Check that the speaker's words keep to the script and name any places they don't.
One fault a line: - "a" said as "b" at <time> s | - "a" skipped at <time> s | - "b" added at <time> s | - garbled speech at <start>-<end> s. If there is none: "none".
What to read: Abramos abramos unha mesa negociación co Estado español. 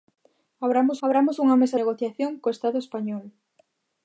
none